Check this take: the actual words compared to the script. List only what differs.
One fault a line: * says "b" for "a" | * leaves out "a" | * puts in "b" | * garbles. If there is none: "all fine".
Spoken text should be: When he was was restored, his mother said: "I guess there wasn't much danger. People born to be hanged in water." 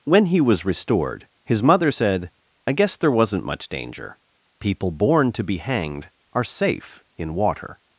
* leaves out "was"
* puts in "are safe"